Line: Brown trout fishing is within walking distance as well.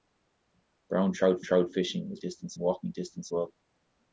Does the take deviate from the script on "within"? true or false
true